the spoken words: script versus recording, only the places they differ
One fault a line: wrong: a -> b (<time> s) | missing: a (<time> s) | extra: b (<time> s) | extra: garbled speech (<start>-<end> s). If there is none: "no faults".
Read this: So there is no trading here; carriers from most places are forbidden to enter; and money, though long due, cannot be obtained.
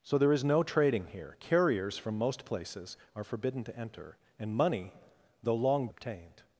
missing: due cannot be (5.9 s)